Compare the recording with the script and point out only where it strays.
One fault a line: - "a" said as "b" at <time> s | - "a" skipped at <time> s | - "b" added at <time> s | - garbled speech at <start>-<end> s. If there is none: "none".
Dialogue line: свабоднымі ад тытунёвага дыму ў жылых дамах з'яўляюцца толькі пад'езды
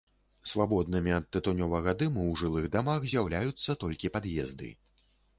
none